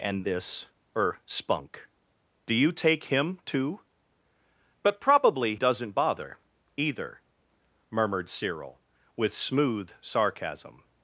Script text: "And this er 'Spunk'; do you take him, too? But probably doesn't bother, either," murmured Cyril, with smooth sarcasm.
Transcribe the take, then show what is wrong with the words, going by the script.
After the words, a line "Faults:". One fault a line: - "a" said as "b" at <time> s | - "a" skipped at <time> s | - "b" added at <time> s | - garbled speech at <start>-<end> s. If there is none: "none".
"And this er 'Spunk'; do you take him, too? But probably doesn't bother, either," murmured Cyril, with smooth sarcasm.
Faults:
none